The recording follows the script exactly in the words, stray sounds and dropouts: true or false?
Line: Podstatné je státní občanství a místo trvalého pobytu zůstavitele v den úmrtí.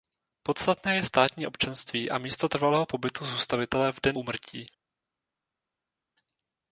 true